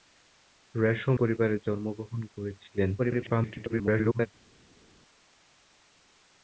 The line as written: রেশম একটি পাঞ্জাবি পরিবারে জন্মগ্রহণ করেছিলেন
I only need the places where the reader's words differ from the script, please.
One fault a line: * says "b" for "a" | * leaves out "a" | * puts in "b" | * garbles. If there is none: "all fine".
* leaves out "একটি পাঞ্জাবি"
* garbles